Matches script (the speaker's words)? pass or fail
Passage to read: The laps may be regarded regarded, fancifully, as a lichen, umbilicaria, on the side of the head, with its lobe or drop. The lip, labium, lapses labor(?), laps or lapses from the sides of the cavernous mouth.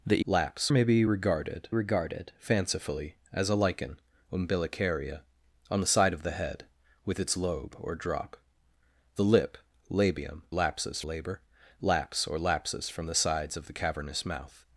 pass